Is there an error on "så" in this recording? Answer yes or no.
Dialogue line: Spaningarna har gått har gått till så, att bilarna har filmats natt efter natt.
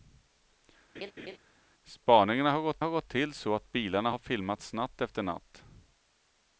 no